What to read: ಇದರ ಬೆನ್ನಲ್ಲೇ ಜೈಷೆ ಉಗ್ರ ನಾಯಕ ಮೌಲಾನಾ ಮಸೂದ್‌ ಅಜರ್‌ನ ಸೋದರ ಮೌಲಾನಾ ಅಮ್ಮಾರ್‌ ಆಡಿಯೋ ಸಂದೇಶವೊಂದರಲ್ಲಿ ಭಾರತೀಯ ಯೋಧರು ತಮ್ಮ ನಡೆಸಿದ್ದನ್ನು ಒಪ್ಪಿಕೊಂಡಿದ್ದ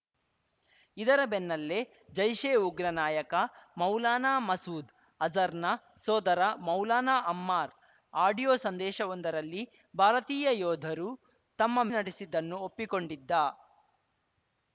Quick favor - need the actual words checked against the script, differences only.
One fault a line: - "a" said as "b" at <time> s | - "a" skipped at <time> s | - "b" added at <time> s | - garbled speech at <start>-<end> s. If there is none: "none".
none